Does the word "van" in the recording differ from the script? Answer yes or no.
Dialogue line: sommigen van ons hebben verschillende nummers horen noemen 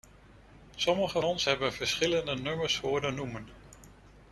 yes